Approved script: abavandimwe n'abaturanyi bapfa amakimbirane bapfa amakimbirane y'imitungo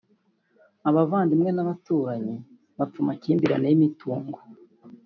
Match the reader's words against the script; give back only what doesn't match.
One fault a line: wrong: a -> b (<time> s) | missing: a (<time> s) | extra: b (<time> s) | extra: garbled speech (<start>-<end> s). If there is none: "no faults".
missing: bapfa amakimbirane (3.6 s)